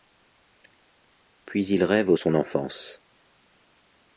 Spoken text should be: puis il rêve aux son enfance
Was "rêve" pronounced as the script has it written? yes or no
yes